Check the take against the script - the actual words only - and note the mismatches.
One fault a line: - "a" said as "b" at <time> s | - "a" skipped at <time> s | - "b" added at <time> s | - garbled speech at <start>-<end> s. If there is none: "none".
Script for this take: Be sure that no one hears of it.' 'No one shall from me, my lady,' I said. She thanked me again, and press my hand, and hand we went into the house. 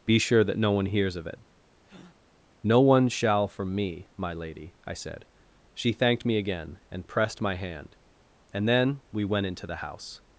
- "press" said as "pressed" at 7.1 s
- "hand" said as "then" at 8.7 s